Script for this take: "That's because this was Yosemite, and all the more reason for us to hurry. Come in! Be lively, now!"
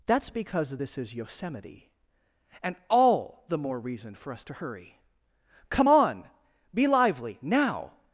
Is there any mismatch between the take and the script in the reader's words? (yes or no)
yes